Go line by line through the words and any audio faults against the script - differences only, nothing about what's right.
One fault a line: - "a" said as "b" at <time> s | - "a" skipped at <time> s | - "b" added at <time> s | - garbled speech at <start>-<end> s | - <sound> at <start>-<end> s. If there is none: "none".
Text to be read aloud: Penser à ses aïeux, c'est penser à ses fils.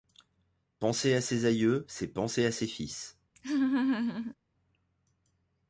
- laugh at 3.4-4.4 s